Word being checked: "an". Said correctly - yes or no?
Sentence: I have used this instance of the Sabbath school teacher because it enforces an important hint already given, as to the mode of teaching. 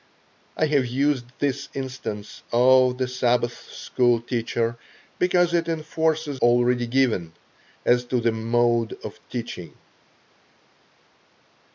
no